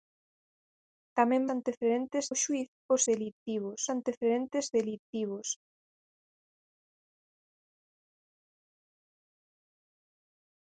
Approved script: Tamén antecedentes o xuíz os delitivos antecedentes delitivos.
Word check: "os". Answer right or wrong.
right